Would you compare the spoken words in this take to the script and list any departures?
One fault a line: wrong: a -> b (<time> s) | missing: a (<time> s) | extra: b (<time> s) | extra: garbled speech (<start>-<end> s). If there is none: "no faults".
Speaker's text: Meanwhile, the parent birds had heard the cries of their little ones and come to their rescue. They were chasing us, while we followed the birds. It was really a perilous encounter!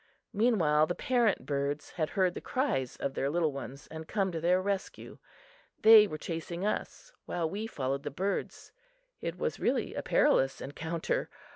no faults